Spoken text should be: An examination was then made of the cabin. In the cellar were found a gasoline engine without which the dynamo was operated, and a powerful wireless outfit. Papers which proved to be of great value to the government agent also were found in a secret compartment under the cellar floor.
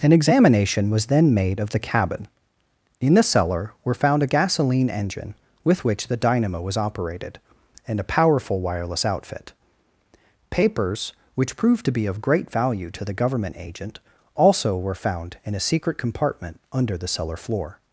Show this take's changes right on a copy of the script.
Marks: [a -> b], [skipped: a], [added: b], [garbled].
An examination was then made of the cabin. In the cellar were found a gasoline engine [without -> with] which the dynamo was operated, and a powerful wireless outfit. Papers which proved to be of great value to the government agent also were found in a secret compartment under the cellar floor.